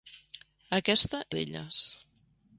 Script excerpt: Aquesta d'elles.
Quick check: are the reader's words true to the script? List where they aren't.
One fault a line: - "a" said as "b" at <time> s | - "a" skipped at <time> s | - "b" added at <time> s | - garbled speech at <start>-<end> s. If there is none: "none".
none